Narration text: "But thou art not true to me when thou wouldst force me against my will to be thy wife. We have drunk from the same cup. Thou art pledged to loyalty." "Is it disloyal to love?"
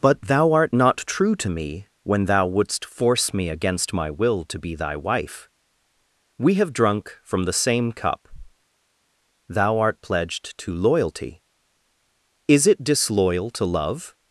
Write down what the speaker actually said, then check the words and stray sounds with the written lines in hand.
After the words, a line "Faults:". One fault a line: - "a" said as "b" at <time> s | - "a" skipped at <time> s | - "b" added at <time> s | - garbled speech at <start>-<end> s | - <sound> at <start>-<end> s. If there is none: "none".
"But thou art not true to me when thou wouldst force me against my will to be thy wife. We have drunk from the same cup. Thou art pledged to loyalty." "Is it disloyal to love?"
Faults:
none